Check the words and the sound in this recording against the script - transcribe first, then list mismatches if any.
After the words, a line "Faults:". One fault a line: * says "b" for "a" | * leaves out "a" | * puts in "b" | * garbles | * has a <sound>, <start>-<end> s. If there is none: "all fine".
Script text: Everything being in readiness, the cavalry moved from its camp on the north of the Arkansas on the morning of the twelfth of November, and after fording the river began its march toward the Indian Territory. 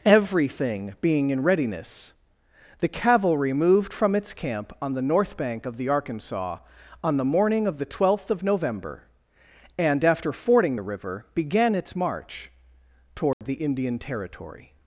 Everything being in readiness, the cavalry moved from its camp on the north bank of the Arkansas on the morning of the twelfth of November, and after fording the river began its march toward the Indian Territory.
Faults:
* puts in "bank"
* has a dropout, 13.3-13.4 s